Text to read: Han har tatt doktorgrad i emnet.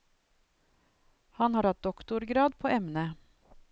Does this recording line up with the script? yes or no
no